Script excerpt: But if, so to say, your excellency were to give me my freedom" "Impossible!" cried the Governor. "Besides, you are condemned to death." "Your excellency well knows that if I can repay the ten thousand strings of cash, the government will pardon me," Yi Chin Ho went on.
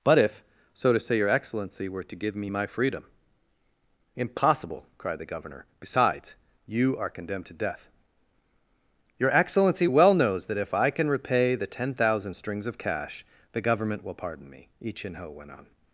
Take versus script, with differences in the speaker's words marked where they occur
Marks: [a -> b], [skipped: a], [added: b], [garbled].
But if, so to say, your excellency were to give me my freedom" "Impossible!" cried the Governor. "Besides, you are condemned to death." "Your excellency well knows that if I can repay the ten thousand strings of cash, the government will pardon me," Yi Chin Ho went on.